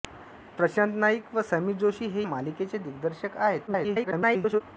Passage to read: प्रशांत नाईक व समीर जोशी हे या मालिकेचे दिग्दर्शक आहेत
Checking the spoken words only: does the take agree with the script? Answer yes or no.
no